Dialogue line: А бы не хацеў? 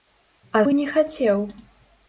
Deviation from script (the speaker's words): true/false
false